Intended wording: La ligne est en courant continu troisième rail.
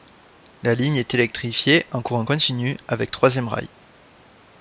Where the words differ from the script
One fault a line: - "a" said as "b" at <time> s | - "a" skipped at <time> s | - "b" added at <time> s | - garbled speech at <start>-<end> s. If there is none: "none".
- "électrifiée" added at 1.1 s
- "avec" added at 2.9 s